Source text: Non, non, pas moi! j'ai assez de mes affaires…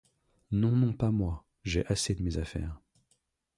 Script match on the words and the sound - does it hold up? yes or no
yes